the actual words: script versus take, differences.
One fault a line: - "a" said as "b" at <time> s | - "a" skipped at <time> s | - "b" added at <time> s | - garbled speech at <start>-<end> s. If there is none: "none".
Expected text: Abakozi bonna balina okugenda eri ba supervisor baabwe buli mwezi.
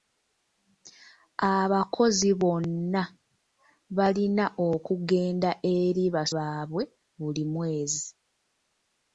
- "supervisor" skipped at 6.2 s